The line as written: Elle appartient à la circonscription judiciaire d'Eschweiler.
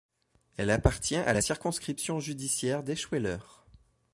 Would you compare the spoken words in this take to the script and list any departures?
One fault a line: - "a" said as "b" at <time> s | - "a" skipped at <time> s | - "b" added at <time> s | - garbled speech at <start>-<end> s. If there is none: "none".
none